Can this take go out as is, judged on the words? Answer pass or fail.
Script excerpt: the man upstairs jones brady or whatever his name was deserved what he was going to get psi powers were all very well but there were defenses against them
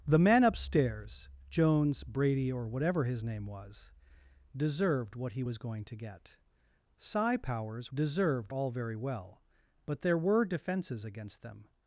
fail